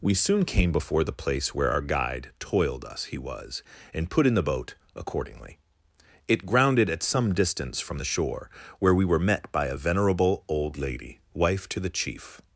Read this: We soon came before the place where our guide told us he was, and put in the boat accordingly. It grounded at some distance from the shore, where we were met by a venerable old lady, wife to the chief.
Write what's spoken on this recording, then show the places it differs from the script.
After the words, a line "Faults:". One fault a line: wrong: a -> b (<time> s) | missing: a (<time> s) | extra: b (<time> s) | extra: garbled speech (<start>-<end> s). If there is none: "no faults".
We soon came before the place where our guide toiled us he was, and put in the boat accordingly. It grounded at some distance from the shore, where we were met by a venerable old lady, wife to the chief.
Faults:
wrong: told -> toiled (2.4 s)